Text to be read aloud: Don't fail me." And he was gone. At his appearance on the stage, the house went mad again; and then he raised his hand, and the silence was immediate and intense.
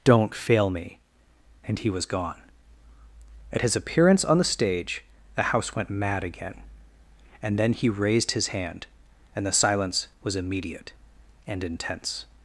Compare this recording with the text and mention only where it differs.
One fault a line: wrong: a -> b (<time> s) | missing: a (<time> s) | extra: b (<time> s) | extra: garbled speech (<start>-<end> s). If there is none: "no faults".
no faults